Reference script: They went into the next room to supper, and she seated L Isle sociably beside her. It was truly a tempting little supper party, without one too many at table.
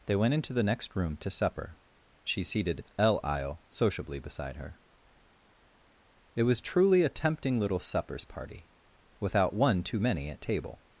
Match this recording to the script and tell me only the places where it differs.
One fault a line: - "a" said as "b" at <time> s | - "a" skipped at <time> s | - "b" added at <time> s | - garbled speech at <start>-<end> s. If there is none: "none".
- "and" skipped at 1.8 s
- "supper" said as "suppers" at 7.8 s